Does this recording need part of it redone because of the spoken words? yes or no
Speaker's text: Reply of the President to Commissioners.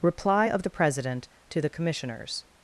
yes